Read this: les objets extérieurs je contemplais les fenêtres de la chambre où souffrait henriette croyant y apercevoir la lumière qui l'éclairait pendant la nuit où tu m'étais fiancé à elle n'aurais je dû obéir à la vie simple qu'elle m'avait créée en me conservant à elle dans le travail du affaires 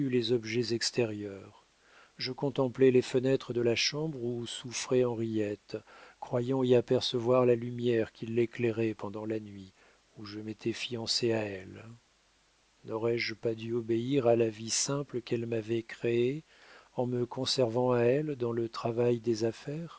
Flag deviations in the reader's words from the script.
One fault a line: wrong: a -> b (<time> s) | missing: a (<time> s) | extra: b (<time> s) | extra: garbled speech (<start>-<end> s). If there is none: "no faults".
wrong: tu -> je (10.2 s)
extra: pas (13.3 s)
wrong: du -> des (19.2 s)